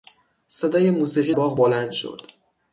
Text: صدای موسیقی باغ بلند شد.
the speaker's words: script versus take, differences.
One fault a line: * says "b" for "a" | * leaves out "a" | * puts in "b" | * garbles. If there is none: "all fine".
all fine